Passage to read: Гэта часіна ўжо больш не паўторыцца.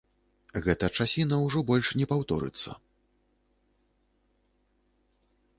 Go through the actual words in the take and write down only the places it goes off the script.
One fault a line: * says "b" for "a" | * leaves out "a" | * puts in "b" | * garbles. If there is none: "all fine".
all fine